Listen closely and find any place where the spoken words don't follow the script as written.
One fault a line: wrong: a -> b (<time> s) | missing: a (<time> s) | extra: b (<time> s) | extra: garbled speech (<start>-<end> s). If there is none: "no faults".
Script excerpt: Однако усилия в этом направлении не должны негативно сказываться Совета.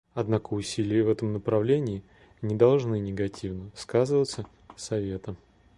no faults